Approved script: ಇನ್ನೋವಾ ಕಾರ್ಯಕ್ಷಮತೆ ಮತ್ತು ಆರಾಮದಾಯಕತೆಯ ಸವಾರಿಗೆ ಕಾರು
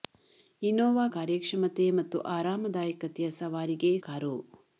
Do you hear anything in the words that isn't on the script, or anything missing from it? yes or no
no